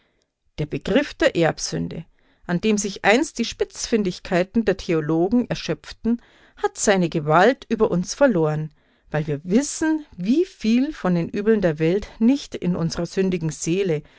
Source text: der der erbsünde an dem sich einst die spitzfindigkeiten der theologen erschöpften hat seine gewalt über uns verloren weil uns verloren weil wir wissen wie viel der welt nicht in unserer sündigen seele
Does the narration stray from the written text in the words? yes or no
yes